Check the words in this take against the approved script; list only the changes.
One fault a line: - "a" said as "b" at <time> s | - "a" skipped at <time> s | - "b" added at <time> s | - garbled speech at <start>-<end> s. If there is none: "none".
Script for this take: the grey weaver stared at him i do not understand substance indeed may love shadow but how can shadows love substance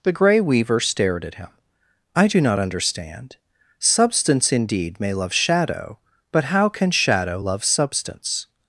- "shadows" said as "shadow" at 6.9 s